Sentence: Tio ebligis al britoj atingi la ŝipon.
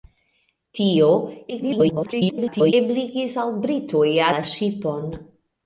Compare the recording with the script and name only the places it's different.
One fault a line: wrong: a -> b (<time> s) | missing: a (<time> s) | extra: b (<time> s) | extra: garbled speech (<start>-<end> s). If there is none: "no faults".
extra: garbled speech (1.5-2.7 s)
missing: atingi (4.1 s)